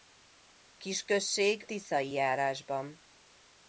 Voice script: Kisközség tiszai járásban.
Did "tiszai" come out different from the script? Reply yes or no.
no